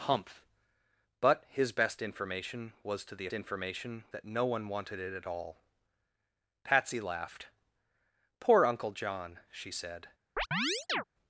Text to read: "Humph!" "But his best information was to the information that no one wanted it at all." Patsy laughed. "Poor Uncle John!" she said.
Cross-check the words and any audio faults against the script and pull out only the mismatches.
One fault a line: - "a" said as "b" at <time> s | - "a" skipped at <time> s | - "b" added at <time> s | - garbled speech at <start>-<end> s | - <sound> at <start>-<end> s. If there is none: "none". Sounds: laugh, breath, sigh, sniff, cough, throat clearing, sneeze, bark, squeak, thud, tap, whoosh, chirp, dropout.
- chirp at 10.4-11.0 s